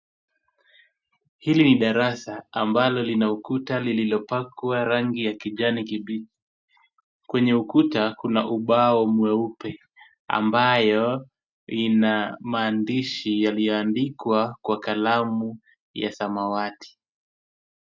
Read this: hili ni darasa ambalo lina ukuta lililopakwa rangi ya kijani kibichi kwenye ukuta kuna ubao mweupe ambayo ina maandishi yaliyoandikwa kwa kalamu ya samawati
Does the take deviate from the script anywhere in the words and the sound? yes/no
no